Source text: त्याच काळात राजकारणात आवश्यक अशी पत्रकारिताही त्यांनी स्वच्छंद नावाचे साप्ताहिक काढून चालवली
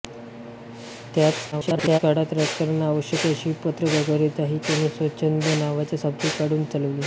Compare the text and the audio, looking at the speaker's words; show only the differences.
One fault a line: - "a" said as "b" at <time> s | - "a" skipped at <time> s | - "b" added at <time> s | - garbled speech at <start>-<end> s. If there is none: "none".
- garbled speech at 1.5-2.0 s